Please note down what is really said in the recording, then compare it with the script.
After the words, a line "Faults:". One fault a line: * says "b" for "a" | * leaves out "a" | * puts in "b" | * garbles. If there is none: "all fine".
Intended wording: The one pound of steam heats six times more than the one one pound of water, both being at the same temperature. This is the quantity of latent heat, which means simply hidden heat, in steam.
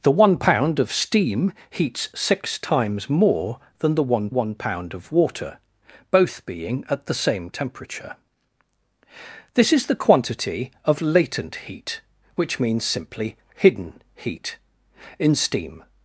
The one pound of steam heats six times more than the one one pound of water, both being at the same temperature. This is the quantity of latent heat, which means simply hidden heat, in steam.
Faults:
all fine